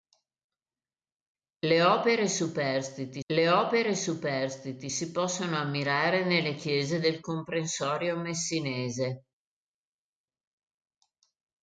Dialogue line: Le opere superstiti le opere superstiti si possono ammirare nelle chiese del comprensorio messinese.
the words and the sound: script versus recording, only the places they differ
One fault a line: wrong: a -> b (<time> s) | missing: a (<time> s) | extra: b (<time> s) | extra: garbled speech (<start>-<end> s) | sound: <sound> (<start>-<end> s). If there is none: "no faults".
no faults